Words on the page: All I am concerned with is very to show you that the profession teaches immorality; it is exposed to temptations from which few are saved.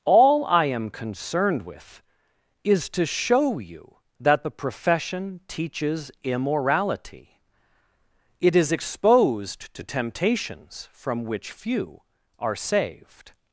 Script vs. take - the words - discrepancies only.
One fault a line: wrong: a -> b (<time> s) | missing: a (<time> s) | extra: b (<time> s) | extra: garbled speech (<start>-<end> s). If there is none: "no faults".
missing: very (2.9 s)